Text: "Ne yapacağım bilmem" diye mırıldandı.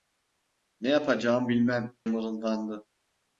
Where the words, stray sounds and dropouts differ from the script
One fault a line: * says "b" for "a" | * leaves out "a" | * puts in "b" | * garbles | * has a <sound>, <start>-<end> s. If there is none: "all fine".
* leaves out "diye"